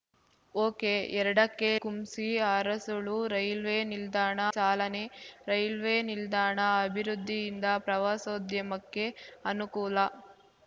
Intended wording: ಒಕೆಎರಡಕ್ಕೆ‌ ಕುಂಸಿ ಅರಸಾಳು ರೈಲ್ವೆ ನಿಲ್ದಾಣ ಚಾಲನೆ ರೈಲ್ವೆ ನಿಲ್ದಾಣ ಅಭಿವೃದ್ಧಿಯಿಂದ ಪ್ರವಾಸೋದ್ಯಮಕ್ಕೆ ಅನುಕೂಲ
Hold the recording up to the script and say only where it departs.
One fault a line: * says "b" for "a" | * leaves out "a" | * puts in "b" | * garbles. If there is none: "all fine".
all fine